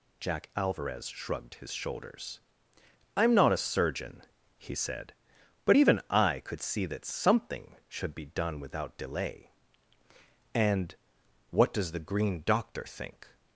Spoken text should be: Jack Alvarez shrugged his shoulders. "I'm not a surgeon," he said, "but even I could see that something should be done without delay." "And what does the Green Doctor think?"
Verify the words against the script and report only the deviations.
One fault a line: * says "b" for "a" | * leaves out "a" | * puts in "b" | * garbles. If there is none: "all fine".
all fine